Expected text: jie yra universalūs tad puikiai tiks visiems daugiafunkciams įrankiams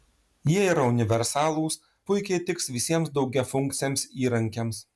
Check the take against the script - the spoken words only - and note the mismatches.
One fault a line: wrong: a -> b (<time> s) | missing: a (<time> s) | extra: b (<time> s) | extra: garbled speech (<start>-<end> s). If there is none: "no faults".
missing: tad (1.8 s)